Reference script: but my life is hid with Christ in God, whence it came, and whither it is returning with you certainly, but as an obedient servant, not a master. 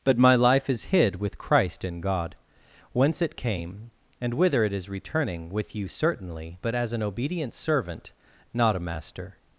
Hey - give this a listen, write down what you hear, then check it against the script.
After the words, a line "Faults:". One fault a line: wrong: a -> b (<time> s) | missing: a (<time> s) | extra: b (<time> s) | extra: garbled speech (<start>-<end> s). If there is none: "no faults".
but my life is hid with Christ in God, whence it came, and whither it is returning with you certainly, but as an obedient servant, not a master.
Faults:
no faults